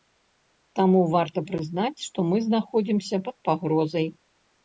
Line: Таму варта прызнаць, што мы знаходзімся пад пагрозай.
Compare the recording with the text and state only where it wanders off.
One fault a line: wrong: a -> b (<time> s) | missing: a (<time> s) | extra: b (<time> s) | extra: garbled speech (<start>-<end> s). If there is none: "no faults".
no faults